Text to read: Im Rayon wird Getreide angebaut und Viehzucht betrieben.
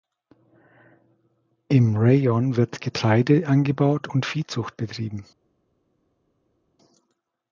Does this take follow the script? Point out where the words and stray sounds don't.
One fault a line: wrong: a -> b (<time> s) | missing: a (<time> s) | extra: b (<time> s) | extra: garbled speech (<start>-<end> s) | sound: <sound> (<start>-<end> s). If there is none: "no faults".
no faults